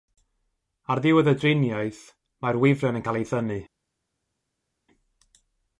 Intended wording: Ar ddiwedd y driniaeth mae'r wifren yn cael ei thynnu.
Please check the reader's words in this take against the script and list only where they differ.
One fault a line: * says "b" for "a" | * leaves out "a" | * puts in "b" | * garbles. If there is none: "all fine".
all fine